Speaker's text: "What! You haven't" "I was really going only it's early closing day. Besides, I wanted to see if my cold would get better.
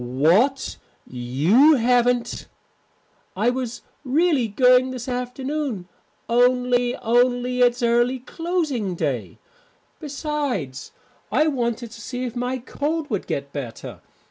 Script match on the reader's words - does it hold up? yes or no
no